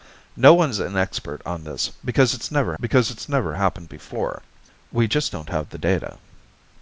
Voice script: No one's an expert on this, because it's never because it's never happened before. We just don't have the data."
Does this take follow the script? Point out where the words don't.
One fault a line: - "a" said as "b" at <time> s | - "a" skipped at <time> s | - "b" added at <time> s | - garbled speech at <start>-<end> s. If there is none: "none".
none